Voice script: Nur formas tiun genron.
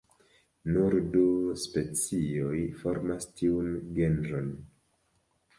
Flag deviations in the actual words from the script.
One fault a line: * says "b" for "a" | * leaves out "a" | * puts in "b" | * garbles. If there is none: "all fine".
* puts in "du specioj"